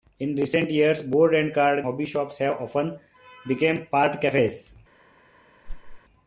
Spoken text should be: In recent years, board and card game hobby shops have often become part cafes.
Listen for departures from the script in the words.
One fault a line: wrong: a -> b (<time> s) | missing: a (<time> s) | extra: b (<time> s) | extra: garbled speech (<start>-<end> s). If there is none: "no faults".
missing: game (1.8 s)